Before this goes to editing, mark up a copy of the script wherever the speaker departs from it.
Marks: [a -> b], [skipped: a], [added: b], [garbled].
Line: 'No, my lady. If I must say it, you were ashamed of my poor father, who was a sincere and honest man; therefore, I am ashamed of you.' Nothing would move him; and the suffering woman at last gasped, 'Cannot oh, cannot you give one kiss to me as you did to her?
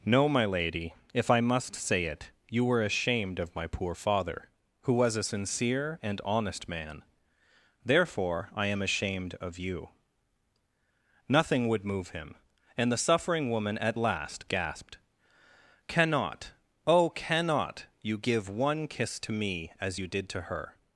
'No, my lady. If I must say it, you were ashamed of my poor father, who was a sincere and honest man; therefore, I am ashamed of you.' Nothing would move him; and the suffering woman at last gasped, 'Cannot oh, cannot you give one kiss to me as you did to her?